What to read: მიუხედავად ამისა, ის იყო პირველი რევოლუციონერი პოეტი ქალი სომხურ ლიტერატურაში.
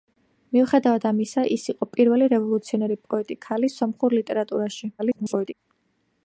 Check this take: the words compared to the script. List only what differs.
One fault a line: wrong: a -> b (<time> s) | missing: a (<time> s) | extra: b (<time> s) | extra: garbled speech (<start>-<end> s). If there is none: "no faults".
extra: garbled speech (5.0-5.5 s)